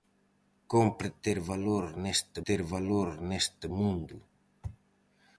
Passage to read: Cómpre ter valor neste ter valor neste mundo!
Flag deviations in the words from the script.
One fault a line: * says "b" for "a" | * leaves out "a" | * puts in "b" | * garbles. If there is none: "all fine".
all fine